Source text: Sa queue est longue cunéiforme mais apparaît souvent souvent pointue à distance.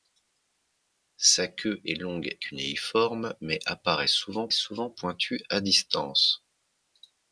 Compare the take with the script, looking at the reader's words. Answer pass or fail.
pass